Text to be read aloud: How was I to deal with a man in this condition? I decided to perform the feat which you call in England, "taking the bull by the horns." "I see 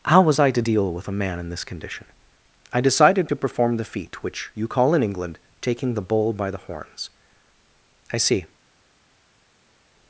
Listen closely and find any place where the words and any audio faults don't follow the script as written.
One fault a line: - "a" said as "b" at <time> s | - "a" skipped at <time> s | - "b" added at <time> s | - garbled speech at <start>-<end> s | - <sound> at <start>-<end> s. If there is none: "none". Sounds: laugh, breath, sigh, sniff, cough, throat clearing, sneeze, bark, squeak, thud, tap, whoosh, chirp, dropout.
none